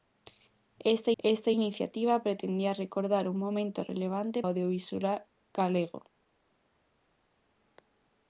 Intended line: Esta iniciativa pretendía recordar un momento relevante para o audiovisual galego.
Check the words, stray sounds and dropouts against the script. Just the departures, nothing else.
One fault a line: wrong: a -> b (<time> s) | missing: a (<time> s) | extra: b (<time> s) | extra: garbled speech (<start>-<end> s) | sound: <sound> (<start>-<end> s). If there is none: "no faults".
extra: esta (1.2 s)
missing: para (4.4 s)